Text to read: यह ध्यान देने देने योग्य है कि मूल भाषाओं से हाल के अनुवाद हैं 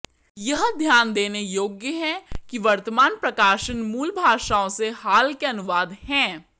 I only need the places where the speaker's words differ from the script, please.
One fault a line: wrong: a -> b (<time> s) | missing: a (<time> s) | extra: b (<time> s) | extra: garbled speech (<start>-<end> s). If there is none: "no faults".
missing: देने (1.4 s)
extra: वर्तमान प्रकाशन (2.6 s)